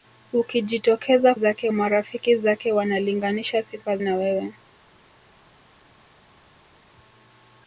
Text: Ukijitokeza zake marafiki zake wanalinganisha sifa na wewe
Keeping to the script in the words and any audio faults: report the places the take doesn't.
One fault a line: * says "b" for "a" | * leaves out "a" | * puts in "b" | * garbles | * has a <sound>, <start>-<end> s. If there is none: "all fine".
all fine